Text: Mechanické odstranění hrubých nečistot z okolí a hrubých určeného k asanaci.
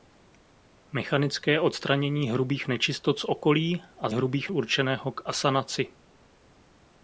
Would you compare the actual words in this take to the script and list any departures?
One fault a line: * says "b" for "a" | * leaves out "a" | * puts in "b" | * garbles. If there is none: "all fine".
all fine